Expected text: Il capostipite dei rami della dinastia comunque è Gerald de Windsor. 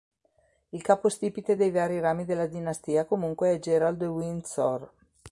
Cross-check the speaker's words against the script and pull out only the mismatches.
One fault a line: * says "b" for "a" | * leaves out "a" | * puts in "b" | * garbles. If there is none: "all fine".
* puts in "vari"